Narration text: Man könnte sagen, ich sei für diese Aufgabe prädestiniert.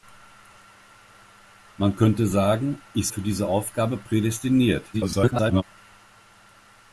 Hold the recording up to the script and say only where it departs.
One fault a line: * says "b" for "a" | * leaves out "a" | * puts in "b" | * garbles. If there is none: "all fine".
* leaves out "sei"
* garbles